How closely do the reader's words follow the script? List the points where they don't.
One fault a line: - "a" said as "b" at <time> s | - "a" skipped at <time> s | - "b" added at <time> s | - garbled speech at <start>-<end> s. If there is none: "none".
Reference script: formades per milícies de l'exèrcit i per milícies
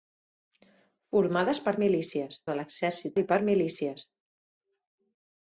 none